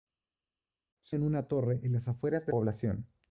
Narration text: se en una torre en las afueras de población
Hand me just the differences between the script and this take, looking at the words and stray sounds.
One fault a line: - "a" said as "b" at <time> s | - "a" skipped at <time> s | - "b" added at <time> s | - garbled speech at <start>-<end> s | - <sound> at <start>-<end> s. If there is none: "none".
none